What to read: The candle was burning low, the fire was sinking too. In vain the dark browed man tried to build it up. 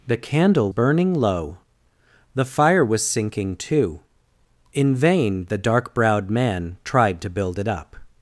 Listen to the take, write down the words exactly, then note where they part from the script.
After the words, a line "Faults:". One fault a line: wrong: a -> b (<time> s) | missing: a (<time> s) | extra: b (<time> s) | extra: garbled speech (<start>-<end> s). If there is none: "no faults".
The candle burning low, the fire was sinking too. In vain the dark browed man tried to build it up.
Faults:
missing: was (0.7 s)